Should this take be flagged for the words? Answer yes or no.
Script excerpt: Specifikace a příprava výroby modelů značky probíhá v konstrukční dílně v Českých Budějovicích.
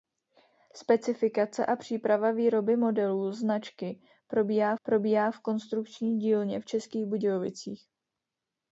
yes